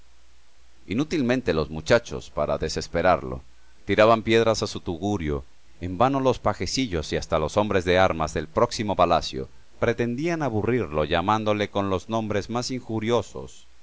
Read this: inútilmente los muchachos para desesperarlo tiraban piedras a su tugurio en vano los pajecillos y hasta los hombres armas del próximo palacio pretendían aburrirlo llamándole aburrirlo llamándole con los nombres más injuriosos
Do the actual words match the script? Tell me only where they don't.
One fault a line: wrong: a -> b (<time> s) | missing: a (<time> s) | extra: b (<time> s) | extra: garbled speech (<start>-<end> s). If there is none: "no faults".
extra: de (7.8 s)
missing: aburrirlo llamándole (11.7 s)